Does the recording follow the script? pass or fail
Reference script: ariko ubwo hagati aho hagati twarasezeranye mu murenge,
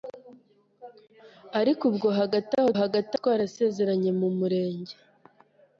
pass